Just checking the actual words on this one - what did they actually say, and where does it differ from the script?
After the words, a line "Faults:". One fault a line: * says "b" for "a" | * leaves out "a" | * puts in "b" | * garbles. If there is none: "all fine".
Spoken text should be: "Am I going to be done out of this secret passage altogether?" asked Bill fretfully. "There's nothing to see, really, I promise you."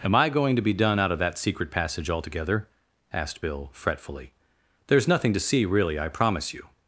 "Am I going to be done out of that secret passage altogether?" asked Bill fretfully. "There's nothing to see, really, I promise you."
Faults:
* says "that" for "this"